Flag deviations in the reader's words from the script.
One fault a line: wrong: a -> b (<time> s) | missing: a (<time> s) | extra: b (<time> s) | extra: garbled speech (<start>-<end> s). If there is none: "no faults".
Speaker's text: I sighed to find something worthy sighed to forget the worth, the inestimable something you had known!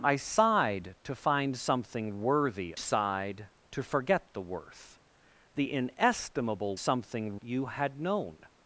no faults